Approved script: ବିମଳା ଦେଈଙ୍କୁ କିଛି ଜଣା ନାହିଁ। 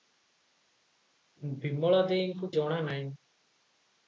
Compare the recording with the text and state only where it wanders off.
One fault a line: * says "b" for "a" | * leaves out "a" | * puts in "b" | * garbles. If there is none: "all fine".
* leaves out "କିଛି"